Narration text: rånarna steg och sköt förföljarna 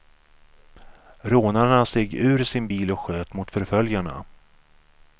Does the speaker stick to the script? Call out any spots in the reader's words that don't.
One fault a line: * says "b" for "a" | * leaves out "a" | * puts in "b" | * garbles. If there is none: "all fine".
* puts in "ur sin bil"
* puts in "mot"